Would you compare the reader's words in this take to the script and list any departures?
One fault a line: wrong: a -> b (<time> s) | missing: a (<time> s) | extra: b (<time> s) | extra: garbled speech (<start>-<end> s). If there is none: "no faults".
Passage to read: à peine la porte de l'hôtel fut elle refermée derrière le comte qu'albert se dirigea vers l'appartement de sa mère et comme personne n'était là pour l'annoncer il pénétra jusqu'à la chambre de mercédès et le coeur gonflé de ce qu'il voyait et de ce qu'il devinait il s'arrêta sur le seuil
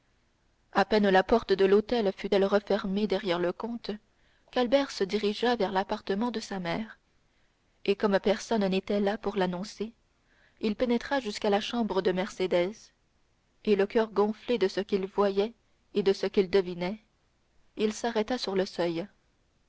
no faults